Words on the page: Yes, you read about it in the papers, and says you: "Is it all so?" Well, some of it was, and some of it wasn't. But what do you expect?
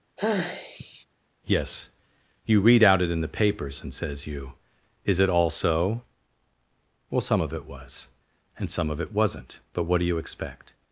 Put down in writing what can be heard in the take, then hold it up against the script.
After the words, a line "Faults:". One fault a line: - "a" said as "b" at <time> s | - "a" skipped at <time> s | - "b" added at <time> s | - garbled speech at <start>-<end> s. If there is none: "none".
Yes, you read out it in the papers, and says you: "Is it all so?" Well, some of it was, and some of it wasn't. But what do you expect?
Faults:
- "about" said as "out" at 2.8 s